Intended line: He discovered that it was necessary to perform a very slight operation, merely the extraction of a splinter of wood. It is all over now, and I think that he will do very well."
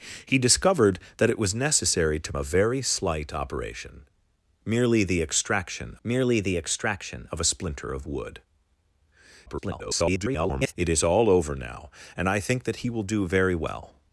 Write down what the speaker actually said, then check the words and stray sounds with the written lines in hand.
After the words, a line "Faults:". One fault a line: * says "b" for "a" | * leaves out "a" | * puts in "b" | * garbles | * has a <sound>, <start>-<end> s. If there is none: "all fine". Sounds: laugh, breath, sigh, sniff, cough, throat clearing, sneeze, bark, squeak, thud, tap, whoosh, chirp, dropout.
He discovered that it was necessary to a very slight operation, merely the extraction merely the extraction of a splinter of wood. [garbled] It is all over now, and I think that he will do very well."
Faults:
* leaves out "perform"
* puts in "merely the extraction"
* garbles